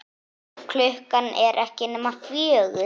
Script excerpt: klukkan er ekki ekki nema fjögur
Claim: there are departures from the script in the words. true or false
true